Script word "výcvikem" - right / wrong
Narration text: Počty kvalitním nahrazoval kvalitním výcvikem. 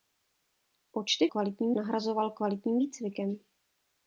right